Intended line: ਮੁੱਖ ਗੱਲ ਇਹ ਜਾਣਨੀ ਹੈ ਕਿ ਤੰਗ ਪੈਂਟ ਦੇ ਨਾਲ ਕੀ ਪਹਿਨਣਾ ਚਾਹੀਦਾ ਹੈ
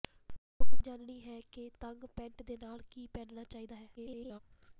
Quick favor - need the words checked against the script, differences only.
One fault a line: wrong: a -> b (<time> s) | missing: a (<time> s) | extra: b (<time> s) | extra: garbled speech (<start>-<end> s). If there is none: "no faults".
missing: ਗੱਲ ਇਹ (0.7 s)
extra: garbled speech (4.0-4.4 s)